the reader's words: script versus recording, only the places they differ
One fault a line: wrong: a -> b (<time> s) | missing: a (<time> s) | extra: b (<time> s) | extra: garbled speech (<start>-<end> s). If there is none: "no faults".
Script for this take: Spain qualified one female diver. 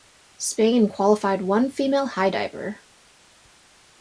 extra: high (2.1 s)